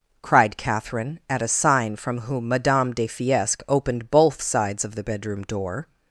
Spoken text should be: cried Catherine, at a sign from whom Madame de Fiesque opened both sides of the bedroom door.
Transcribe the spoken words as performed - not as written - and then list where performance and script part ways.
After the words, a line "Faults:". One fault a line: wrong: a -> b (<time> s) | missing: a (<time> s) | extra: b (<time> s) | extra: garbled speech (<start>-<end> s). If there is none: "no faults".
cried Catherine, at a sign from whom Madame de Fiesque opened both sides of the bedroom door.
Faults:
no faults